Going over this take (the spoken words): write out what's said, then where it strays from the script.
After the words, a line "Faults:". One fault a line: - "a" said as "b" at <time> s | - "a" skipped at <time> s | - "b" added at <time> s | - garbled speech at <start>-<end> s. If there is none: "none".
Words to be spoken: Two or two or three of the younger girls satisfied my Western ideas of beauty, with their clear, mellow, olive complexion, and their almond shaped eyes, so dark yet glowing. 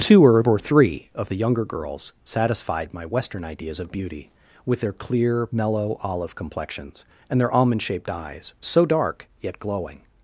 Two or three of the younger girls satisfied my Western ideas of beauty, with their clear, mellow, olive complexions, and their almond shaped eyes, so dark yet glowing.
Faults:
- "two or" skipped at 0.6 s
- "complexion" said as "complexions" at 6.4 s